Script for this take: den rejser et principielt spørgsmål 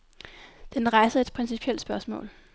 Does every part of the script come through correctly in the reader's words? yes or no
yes